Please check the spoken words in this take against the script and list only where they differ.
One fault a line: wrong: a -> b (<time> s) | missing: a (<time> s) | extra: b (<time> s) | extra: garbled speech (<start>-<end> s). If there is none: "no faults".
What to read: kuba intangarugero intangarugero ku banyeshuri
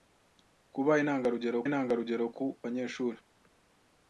no faults